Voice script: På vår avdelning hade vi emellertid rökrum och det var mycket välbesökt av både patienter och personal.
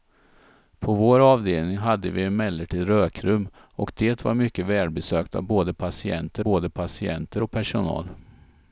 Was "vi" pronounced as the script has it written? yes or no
yes